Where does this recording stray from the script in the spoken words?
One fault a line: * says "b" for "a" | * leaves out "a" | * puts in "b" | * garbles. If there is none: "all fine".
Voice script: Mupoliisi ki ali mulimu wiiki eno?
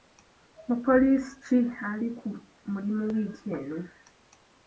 * puts in "ku"